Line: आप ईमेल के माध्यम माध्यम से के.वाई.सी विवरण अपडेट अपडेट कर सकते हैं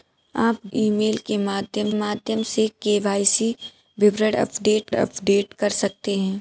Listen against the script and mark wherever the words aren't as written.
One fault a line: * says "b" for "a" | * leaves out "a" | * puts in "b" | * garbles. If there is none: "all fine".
all fine